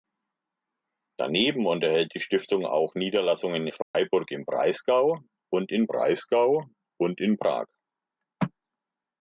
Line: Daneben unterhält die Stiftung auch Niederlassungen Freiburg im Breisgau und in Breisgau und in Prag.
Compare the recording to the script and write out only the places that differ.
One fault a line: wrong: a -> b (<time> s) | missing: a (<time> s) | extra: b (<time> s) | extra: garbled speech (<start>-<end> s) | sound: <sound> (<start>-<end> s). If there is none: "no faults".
sound: dropout (3.8-3.9 s)